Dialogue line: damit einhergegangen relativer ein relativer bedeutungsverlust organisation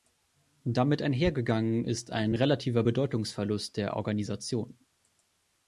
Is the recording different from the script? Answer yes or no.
yes